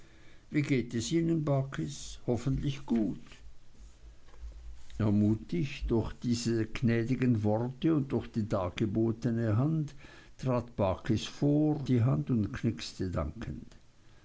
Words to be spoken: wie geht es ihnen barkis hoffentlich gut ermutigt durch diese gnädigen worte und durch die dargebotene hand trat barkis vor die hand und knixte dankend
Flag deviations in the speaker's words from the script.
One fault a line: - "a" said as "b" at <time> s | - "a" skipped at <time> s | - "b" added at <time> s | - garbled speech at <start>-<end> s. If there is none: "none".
none